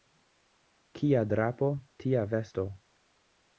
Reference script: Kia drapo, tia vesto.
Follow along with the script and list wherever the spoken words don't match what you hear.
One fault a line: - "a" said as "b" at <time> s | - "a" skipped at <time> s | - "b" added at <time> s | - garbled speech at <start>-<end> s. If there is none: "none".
none